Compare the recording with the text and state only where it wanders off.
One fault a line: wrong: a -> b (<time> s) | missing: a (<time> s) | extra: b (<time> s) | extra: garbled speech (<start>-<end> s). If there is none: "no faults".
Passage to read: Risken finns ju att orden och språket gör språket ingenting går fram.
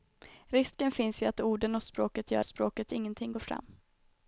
no faults